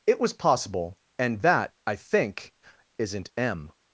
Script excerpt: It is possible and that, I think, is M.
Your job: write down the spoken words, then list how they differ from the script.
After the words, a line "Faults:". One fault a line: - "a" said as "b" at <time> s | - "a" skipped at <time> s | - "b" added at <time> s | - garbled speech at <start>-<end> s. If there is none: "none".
It was possible and that, I think, isn't M.
Faults:
- "is" said as "was" at 0.2 s
- "is" said as "isn't" at 3.0 s